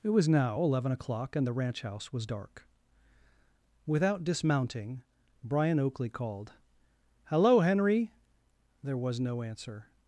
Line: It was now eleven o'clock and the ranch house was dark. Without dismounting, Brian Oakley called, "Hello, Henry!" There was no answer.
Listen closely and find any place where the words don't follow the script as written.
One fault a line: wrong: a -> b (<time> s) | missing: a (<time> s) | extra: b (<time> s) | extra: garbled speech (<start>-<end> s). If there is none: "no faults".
no faults